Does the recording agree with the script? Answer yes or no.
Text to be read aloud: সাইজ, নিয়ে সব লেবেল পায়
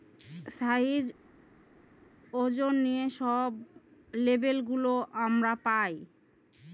no